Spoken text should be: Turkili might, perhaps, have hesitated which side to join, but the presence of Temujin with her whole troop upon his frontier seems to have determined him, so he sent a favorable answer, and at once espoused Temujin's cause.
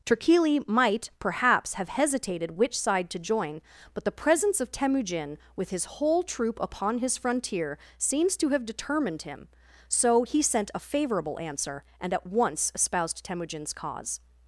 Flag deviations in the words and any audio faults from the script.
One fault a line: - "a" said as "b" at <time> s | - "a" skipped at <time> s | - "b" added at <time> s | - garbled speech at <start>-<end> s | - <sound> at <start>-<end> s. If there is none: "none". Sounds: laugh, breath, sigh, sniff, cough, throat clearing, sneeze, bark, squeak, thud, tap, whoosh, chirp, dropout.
- "her" said as "his" at 5.7 s